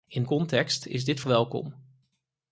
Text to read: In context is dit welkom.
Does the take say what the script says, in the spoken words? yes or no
yes